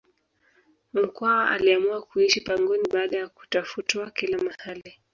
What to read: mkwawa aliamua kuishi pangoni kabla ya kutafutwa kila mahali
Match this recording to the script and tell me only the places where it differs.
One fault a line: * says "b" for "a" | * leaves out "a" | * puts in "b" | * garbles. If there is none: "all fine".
* says "baada" for "kabla"